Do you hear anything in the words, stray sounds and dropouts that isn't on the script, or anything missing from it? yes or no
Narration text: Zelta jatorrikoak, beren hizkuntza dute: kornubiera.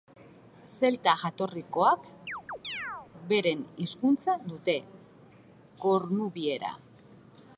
yes